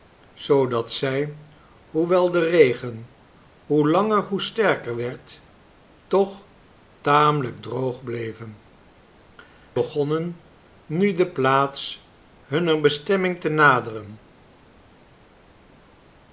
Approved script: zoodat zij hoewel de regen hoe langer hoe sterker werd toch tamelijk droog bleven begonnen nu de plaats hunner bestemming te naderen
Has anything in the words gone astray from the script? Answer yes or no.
no